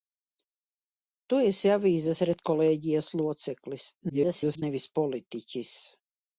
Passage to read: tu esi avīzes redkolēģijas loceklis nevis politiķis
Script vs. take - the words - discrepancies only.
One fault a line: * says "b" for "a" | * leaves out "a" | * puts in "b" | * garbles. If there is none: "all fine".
* garbles